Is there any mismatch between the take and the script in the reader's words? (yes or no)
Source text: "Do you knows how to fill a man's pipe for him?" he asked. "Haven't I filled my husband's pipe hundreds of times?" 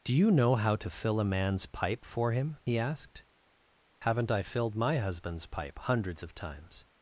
yes